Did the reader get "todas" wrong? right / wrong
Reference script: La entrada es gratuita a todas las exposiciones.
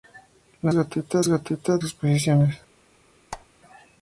wrong